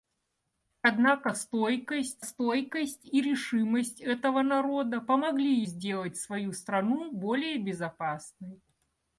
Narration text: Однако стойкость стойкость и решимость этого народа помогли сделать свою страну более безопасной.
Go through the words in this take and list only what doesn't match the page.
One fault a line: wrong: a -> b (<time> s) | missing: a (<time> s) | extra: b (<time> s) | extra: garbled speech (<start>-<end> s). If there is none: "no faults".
no faults